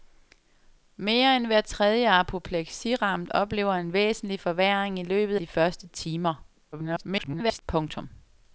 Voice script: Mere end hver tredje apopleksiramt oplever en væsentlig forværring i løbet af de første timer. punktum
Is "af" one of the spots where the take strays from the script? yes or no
yes